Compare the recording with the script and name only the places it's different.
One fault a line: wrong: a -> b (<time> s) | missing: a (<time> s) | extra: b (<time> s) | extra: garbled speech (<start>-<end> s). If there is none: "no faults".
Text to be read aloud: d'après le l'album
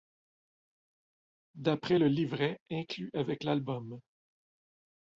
extra: livret inclus avec (2.1 s)